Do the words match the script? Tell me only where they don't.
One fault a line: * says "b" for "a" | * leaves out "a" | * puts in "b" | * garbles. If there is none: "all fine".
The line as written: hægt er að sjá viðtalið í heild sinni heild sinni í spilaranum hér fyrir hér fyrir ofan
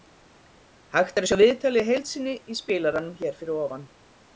* leaves out "heild sinni"
* leaves out "hér fyrir"